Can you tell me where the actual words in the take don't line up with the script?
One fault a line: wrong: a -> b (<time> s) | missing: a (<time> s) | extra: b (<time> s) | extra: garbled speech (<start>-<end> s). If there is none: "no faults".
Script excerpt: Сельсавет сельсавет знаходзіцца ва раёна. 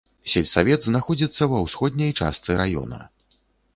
missing: сельсавет (0.9 s)
extra: ўсходняй частцы (1.7 s)